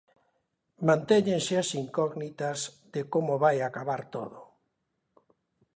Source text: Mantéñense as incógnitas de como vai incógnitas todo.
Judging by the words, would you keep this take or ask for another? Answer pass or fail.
fail